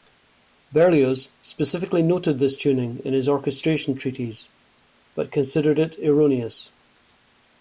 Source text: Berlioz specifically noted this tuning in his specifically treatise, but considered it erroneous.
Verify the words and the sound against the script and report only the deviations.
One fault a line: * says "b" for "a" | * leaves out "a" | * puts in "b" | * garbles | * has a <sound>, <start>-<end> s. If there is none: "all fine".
* says "orchestration" for "specifically"